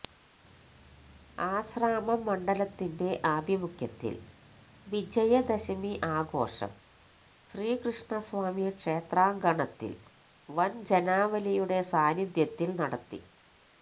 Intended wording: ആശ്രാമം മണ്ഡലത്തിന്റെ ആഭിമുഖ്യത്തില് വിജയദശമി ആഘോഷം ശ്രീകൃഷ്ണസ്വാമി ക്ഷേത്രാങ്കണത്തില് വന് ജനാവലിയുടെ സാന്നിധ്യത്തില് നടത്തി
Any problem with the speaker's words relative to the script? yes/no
no